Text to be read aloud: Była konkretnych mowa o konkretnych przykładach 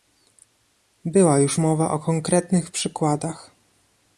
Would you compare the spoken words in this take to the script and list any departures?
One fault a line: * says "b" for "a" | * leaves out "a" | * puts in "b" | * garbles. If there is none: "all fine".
* says "już" for "konkretnych"